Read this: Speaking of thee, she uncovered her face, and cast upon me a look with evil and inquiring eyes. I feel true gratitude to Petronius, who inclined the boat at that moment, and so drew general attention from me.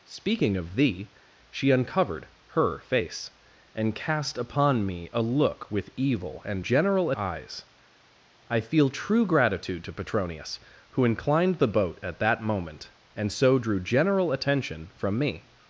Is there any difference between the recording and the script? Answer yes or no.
yes